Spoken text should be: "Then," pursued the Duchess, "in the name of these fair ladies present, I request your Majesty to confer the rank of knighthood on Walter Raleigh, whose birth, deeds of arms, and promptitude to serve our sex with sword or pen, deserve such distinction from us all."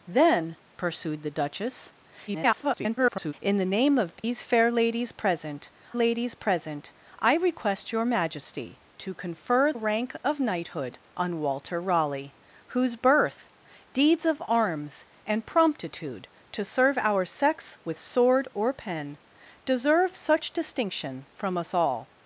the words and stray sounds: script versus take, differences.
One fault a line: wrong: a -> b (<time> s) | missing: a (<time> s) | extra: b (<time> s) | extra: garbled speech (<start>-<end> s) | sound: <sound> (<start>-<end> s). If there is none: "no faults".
extra: garbled speech (2.3-3.3 s)
sound: dropout (4.2-4.2 s)
extra: ladies present (5.9 s)
missing: the (9.7 s)